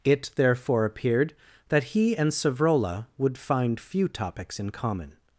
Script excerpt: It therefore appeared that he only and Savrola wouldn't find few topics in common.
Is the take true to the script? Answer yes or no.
no